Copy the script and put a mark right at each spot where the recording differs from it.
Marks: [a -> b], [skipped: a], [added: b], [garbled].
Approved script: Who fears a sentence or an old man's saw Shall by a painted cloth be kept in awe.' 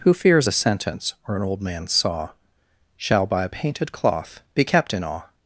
Who fears a sentence or an old man's saw Shall by a painted cloth be kept in awe.'